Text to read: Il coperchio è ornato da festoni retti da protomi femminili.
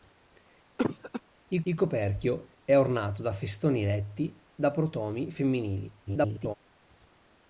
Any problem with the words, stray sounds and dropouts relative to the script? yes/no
yes